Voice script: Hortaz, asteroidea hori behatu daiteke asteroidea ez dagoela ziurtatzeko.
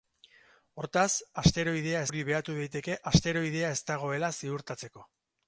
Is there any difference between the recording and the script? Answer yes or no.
no